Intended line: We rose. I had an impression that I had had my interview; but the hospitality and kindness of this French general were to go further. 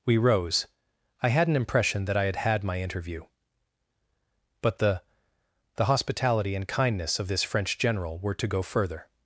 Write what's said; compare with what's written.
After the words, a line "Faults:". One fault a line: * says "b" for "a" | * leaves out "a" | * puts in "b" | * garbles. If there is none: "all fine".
We rose. I had an impression that I had had my interview; but the the hospitality and kindness of this French general were to go further.
Faults:
* puts in "the"